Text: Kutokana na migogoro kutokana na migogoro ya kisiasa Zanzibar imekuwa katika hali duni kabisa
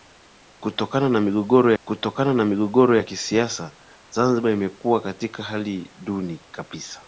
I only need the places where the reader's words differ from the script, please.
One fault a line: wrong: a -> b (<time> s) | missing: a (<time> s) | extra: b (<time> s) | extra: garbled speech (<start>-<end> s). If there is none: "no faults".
no faults